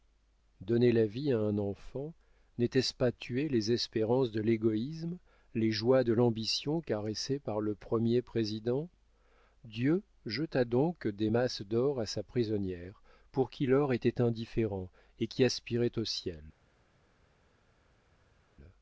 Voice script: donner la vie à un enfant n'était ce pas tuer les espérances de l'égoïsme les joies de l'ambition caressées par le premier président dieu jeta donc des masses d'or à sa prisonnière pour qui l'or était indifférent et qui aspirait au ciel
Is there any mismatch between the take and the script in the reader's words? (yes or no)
no